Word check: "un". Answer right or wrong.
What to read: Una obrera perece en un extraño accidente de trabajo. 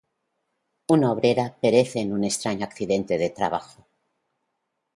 right